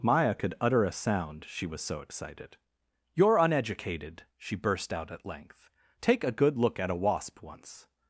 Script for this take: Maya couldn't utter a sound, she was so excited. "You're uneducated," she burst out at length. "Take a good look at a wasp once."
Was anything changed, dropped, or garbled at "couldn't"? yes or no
yes